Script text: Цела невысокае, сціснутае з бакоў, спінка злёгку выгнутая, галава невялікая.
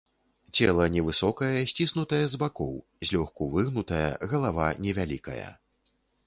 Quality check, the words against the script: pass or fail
fail